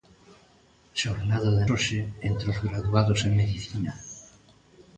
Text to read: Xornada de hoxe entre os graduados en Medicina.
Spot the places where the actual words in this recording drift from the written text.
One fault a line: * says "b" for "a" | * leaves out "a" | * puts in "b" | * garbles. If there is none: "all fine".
all fine